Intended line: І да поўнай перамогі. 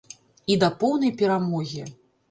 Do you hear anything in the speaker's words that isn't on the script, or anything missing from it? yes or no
no